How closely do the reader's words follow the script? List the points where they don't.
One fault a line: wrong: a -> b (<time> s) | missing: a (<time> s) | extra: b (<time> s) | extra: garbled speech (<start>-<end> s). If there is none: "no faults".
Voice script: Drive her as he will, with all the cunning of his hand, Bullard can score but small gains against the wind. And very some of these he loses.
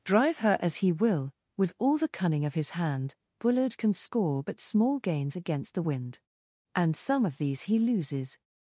missing: very (7.0 s)